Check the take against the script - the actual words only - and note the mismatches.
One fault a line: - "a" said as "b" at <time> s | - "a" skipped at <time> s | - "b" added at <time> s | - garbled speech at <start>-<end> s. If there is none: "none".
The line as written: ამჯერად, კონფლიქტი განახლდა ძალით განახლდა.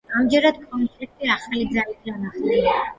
- "განახლდა" said as "ახალი" at 1.4 s